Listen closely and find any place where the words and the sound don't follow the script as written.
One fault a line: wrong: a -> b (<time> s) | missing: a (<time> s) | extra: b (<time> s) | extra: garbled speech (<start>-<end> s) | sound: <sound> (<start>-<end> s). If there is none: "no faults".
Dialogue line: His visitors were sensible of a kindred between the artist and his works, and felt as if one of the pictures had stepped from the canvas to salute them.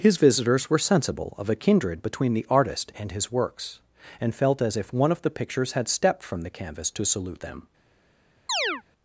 sound: chirp (8.5-8.8 s)